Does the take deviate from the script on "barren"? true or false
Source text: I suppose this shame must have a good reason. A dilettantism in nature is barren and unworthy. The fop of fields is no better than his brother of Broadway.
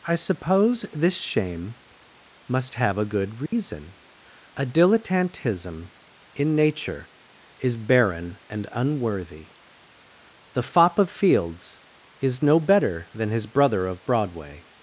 false